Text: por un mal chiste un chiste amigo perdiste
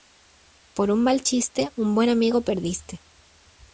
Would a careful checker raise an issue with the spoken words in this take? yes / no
yes